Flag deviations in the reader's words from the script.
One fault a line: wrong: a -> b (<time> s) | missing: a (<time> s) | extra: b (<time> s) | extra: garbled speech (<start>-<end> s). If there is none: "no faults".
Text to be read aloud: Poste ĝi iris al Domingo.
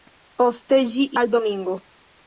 missing: iris (1.1 s)